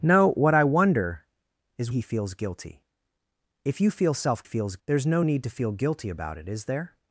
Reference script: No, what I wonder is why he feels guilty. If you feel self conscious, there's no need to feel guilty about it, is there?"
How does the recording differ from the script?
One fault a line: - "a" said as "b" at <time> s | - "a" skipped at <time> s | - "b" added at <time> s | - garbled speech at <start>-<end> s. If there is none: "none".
- "why" skipped at 1.9 s
- "conscious" said as "feels" at 4.4 s